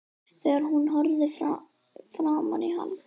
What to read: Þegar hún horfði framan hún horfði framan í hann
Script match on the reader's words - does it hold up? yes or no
no